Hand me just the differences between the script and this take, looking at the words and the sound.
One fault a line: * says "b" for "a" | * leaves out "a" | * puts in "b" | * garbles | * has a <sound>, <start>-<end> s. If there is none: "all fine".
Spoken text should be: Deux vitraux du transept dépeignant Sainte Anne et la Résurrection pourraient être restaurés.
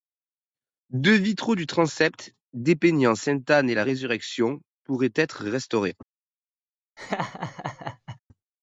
* has a laugh, 7.0-8.2 s